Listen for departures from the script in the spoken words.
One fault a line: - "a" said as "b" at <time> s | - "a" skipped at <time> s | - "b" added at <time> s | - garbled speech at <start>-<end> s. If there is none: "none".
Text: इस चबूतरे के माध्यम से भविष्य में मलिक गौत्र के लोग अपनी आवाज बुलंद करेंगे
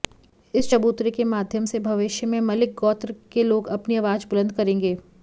none